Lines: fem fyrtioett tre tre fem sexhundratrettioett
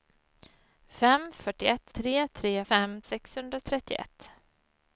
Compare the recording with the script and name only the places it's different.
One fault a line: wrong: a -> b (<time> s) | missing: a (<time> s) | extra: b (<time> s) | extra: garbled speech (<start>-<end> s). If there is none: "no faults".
no faults